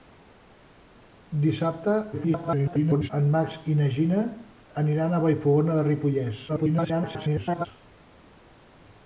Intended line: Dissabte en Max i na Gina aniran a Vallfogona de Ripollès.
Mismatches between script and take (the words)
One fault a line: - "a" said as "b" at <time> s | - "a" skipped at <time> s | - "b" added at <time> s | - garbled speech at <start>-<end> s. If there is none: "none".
- garbled speech at 2.1-3.1 s
- garbled speech at 6.5-7.7 s